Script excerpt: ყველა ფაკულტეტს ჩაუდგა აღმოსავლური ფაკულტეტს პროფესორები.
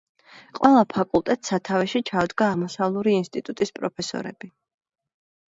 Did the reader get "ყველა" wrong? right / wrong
right